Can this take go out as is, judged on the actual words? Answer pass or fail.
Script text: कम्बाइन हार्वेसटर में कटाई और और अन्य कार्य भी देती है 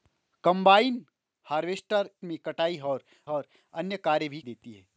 pass